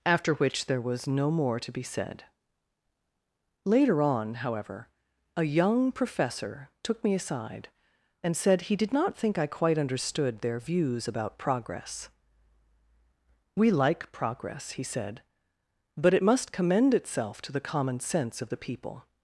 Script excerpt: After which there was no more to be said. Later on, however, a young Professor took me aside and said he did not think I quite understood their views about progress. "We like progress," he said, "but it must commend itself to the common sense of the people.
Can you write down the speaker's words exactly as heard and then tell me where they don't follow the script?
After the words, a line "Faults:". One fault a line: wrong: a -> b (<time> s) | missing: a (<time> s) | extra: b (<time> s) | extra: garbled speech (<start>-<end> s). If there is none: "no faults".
After which there was no more to be said. Later on, however, a young Professor took me aside and said he did not think I quite understood their views about progress. "We like progress," he said, "but it must commend itself to the common sense of the people.
Faults:
no faults